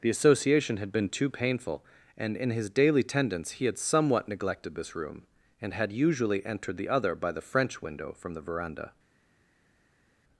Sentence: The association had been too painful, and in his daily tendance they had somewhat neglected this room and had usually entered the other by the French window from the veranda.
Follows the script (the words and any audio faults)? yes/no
no